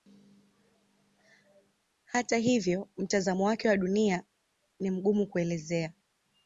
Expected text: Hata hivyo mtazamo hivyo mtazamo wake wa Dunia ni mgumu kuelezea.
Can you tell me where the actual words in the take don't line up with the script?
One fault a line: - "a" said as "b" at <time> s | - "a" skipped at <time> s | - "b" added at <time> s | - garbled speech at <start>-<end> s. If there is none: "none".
- "hivyo mtazamo" skipped at 3.4 s